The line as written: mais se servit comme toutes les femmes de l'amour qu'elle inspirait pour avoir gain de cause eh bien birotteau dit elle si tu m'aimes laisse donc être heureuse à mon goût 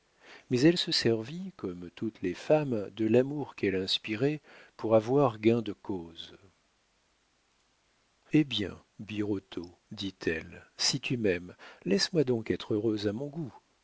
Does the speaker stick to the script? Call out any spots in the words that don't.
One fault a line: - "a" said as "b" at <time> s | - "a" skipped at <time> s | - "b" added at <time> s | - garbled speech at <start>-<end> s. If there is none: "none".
- "elle" added at 0.6 s
- "moi" added at 12.1 s